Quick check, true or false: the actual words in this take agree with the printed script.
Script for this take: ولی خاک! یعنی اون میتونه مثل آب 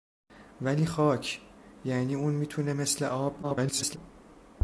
false